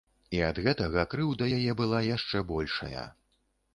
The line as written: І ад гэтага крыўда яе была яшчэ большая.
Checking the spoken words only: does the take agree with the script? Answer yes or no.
yes